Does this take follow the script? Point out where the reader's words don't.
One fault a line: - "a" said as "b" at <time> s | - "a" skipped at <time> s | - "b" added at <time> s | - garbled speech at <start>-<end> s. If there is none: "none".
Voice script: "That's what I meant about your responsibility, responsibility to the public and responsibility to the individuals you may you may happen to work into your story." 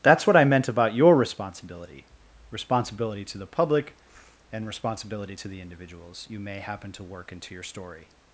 - "you may" skipped at 6.6 s